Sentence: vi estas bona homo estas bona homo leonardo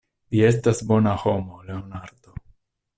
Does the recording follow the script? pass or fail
fail